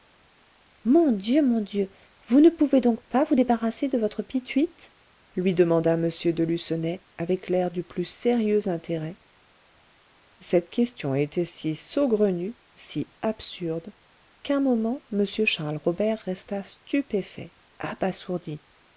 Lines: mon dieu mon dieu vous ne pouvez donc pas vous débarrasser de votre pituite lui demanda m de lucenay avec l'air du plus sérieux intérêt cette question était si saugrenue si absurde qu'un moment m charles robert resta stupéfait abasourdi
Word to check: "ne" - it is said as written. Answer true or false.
true